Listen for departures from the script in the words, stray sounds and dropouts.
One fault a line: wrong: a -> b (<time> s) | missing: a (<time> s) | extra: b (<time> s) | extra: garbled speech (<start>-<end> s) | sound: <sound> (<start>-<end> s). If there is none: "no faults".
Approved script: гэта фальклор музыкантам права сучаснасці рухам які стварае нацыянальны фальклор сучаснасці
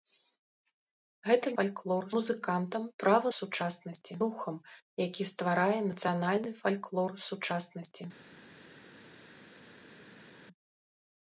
no faults